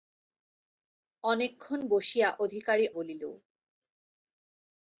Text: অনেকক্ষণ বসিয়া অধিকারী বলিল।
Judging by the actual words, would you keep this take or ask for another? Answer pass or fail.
pass